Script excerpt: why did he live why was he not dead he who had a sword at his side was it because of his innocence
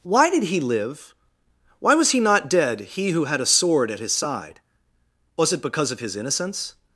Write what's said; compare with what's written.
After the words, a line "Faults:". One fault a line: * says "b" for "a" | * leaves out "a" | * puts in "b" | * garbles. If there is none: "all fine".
why did he live why was he not dead he who had a sword at his side was it because of his innocence
Faults:
all fine